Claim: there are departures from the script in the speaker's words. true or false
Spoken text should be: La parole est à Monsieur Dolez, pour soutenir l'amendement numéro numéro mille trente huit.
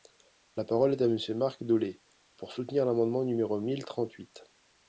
true